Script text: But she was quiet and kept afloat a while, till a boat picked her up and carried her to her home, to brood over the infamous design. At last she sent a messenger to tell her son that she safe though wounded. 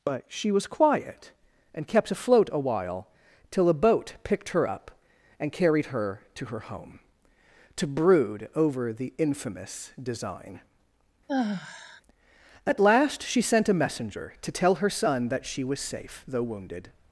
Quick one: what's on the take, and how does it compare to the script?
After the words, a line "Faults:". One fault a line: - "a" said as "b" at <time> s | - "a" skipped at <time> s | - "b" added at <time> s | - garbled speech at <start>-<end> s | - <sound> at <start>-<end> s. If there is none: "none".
But she was quiet and kept afloat a while, till a boat picked her up and carried her to her home, to brood over the infamous design. At last she sent a messenger to tell her son that she was safe though wounded.
Faults:
- sigh at 11.3-12.0 s
- "was" added at 15.6 s